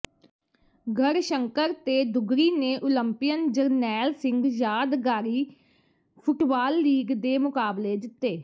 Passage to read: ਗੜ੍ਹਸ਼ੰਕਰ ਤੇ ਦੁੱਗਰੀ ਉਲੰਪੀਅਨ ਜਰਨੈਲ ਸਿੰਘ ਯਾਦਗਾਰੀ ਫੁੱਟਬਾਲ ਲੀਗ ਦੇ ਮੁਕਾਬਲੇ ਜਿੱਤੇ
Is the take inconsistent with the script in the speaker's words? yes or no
yes